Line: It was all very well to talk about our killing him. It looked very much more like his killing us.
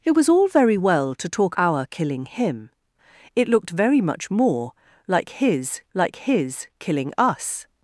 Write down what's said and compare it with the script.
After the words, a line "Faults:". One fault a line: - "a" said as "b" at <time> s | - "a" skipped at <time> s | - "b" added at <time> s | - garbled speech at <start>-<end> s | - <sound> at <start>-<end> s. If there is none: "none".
It was all very well to talk our killing him. It looked very much more like his like his killing us.
Faults:
- "about" skipped at 1.6 s
- "like his" added at 5.9 s